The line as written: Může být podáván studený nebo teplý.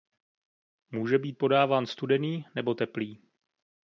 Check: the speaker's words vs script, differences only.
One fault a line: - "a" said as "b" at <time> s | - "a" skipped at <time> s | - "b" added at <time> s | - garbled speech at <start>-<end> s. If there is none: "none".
none